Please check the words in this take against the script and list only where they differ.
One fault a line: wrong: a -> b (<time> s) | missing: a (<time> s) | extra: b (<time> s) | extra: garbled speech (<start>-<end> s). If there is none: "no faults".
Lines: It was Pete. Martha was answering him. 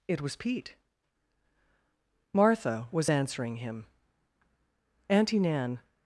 extra: Auntie Nan (5.1 s)